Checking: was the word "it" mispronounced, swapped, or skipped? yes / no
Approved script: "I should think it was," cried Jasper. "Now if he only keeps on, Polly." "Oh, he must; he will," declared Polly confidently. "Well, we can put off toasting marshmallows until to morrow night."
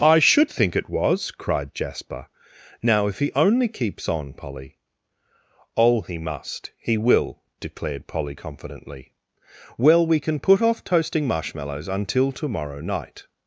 no